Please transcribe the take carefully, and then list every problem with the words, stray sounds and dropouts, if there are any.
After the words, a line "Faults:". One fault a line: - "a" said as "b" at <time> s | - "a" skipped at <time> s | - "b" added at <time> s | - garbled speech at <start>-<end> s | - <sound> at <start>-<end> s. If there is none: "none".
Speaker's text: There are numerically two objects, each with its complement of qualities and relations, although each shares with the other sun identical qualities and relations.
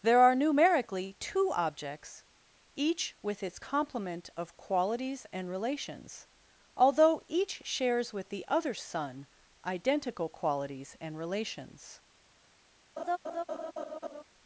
There are numerically two objects, each with its complement of qualities and relations, although each shares with the other sun identical qualities and relations.
Faults:
- laugh at 13.0-14.2 s